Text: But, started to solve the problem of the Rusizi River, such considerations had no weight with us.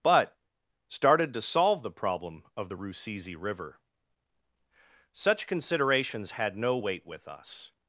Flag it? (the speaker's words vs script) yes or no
no